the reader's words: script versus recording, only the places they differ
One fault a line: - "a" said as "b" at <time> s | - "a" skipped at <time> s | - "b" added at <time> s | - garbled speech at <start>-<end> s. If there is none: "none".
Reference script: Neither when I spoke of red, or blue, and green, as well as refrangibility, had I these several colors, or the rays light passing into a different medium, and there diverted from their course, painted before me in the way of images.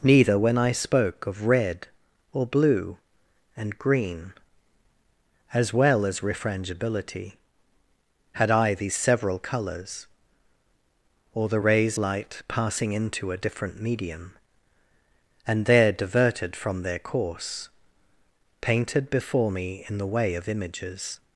none